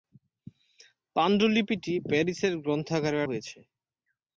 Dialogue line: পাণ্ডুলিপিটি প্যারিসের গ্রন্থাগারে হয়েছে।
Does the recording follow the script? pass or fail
pass